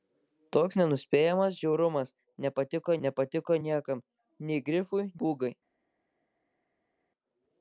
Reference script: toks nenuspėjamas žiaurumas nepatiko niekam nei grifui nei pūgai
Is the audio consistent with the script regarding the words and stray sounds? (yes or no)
no